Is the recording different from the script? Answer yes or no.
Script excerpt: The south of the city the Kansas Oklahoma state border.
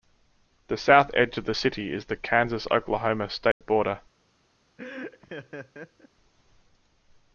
yes